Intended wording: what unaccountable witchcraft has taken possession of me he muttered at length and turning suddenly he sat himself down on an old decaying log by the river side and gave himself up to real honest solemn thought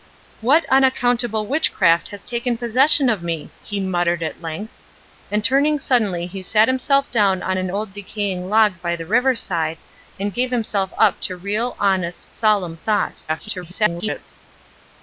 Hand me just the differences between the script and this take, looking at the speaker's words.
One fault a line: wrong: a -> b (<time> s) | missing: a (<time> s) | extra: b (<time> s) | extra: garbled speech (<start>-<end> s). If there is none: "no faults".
extra: garbled speech (13.3-14.2 s)